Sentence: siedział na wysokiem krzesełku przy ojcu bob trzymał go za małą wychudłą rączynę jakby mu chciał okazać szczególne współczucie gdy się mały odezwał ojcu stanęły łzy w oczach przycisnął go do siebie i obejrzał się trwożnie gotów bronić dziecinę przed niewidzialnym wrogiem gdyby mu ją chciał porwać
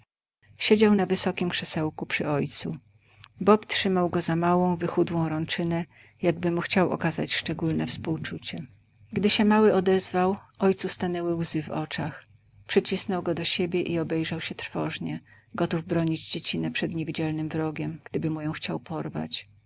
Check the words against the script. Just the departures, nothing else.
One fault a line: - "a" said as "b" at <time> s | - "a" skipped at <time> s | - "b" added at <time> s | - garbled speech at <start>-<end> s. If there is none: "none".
none